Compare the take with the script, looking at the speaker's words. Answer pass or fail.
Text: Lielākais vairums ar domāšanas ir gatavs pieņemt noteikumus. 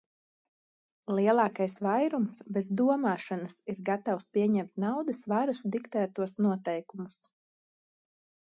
fail